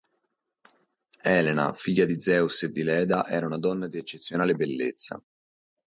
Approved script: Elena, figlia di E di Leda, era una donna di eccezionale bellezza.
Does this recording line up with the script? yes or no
no